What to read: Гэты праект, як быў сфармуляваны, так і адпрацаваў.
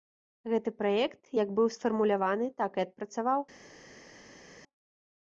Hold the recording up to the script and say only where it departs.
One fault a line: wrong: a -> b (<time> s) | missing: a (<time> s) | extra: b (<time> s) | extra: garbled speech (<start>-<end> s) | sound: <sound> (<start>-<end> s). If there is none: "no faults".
no faults